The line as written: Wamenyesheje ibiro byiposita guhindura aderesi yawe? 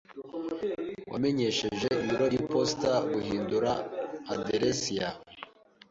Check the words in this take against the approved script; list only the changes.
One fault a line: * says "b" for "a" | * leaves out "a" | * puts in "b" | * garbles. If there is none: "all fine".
all fine